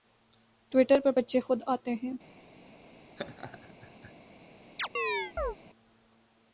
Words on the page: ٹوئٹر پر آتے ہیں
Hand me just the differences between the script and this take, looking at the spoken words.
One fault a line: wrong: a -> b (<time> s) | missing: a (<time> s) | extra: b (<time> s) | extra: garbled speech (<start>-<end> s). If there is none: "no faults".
extra: بچے خود (1.2 s)